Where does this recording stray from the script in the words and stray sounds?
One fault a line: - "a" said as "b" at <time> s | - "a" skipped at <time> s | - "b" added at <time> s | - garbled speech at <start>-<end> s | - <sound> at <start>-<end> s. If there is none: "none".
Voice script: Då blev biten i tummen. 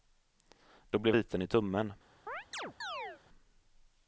- chirp at 2.3-3.2 s